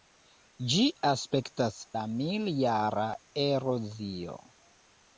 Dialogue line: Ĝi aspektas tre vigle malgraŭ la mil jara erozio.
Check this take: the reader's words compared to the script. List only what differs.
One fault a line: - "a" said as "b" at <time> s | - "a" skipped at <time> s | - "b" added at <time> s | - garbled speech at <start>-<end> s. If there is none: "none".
- "tre vigle malgraŭ" skipped at 1.8 s